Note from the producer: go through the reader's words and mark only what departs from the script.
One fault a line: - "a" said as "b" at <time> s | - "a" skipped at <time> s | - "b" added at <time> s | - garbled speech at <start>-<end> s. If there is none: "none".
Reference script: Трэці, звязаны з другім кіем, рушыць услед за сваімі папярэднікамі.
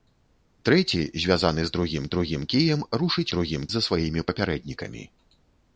- "другім" added at 2.1 s
- "услед" said as "другім" at 3.3 s